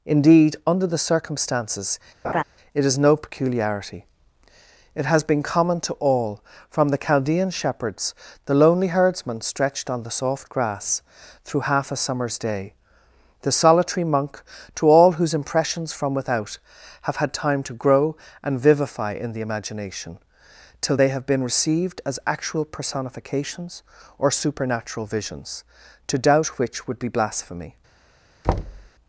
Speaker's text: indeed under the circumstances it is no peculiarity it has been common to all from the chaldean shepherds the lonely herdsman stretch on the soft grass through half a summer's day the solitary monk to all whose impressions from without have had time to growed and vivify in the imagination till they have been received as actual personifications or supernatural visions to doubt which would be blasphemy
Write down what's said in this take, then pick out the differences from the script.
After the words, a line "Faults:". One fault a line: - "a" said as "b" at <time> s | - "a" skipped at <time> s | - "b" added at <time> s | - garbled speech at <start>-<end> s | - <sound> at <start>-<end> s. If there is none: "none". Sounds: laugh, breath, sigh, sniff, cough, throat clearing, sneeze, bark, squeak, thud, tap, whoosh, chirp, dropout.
indeed under the circumstances it is no peculiarity it has been common to all from the chaldean shepherds the lonely herdsman stretched on the soft grass through half a summer's day the solitary monk to all whose impressions from without have had time to grow and vivify in the imagination till they have been received as actual personifications or supernatural visions to doubt which would be blasphemy
Faults:
- laugh at 2.2-2.4 s
- "stretch" said as "stretched" at 9.4 s
- "growed" said as "grow" at 17.7 s
- thud at 28.4-28.9 s